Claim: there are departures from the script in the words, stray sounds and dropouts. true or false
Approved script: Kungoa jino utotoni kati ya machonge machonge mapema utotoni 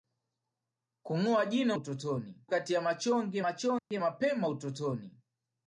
true